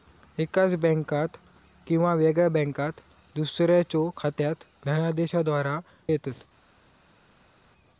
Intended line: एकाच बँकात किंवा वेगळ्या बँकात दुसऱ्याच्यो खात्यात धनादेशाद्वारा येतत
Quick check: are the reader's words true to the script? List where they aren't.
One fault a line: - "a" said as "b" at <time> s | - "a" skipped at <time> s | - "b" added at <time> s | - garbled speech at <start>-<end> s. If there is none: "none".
none